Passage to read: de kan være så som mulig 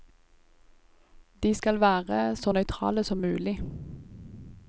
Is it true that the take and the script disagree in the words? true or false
true